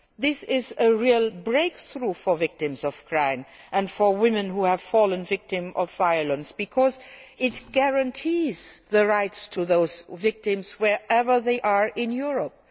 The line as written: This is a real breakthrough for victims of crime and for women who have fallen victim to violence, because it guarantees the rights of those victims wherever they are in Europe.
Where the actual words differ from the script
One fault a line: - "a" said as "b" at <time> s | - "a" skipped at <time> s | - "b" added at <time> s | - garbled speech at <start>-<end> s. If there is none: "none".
none